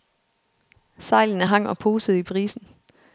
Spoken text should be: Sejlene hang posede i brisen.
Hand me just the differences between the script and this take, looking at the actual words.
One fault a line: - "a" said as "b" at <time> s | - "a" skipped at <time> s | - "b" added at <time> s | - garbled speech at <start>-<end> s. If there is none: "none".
- "og" added at 1.7 s